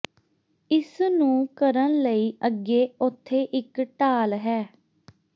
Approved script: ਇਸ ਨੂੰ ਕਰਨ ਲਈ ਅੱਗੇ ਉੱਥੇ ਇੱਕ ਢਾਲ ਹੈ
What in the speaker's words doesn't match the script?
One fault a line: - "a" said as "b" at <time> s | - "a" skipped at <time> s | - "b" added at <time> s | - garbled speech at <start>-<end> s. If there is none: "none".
none